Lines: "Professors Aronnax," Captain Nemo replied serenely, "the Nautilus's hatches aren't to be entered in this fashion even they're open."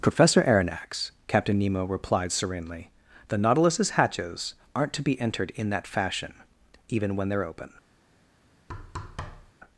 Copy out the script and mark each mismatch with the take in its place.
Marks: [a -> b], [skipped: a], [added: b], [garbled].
["Professors -> Professor] Aronnax," Captain Nemo replied serenely, "the Nautilus's hatches aren't to be entered in [this -> that] fashion even [added: when] they're open."